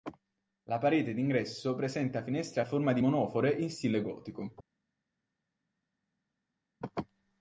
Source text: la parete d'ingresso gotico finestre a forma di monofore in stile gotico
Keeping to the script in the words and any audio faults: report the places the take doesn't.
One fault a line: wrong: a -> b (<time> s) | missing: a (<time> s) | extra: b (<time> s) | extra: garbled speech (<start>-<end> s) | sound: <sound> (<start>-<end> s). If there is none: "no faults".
wrong: gotico -> presenta (1.8 s)